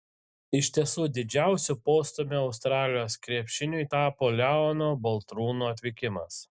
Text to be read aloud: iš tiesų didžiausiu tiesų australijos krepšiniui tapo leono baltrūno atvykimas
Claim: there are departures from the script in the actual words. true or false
true